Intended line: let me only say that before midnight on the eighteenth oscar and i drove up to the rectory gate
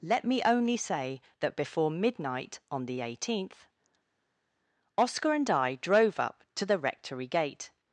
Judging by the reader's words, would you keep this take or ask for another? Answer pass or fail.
pass